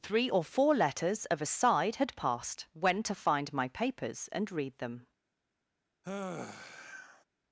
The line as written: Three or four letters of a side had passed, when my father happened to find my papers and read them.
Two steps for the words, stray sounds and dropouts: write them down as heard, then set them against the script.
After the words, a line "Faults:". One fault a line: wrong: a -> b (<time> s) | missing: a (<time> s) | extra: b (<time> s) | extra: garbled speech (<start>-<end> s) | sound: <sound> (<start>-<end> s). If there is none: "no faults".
Three or four letters of a side had passed, when to find my papers and read them.
Faults:
missing: my father happened (3.0 s)
sound: sigh (6.0-7.2 s)